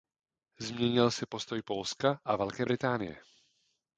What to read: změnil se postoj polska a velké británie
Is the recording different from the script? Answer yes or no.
no